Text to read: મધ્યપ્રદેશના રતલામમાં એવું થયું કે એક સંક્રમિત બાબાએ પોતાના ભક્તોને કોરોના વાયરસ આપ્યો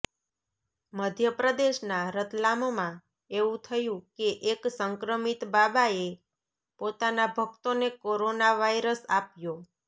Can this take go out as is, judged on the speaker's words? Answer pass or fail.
pass